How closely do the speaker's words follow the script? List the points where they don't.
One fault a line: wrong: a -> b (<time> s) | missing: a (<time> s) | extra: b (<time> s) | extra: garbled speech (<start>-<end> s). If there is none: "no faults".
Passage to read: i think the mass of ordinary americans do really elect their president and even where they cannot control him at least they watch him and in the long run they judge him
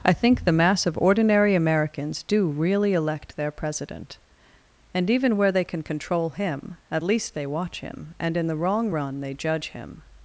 wrong: cannot -> can (5.6 s)
wrong: long -> wrong (8.6 s)